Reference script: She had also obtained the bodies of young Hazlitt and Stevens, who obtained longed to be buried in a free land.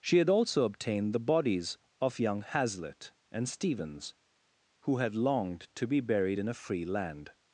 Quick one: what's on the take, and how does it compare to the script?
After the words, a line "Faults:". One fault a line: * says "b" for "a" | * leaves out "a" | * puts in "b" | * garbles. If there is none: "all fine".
She had also obtained the bodies of young Hazlitt and Stevens, who had longed to be buried in a free land.
Faults:
* says "had" for "obtained"